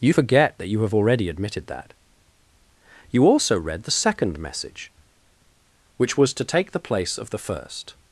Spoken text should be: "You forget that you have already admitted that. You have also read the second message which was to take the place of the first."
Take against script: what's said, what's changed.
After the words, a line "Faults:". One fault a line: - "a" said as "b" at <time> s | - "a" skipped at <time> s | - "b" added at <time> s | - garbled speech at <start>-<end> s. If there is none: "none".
"You forget that you have already admitted that. You also read the second message which was to take the place of the first."
Faults:
- "have" skipped at 3.3 s